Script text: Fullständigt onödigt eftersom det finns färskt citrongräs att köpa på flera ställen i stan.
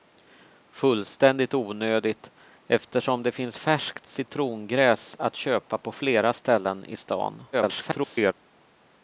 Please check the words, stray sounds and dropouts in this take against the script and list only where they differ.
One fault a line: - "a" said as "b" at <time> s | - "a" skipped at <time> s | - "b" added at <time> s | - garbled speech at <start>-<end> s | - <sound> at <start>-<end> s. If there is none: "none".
- garbled speech at 7.5-8.3 s